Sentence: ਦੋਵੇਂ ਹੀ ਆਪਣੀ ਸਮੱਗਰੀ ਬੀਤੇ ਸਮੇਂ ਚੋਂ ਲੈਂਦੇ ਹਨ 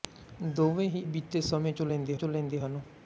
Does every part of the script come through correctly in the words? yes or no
no